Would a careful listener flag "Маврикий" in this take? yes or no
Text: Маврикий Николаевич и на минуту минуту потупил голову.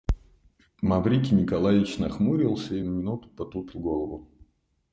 no